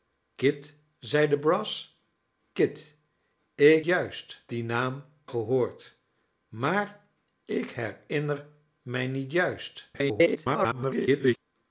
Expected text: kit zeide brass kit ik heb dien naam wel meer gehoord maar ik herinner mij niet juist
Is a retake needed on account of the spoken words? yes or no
yes